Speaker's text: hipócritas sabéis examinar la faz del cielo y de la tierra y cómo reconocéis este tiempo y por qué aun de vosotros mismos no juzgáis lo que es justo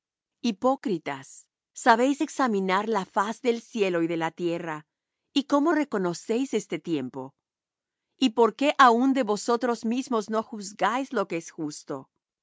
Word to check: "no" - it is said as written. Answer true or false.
true